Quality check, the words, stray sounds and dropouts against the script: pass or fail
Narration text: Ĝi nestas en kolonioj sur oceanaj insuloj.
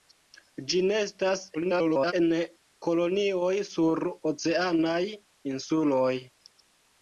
fail